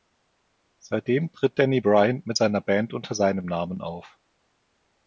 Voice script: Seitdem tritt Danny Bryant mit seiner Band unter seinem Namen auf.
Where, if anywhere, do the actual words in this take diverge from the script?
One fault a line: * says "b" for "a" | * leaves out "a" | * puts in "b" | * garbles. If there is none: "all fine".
all fine